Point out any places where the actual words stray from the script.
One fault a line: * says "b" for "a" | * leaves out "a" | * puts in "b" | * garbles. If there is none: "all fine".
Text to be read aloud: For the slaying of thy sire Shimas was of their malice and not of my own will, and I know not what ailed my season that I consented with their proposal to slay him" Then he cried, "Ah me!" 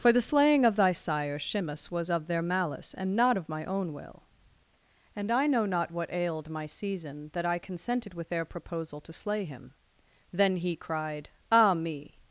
all fine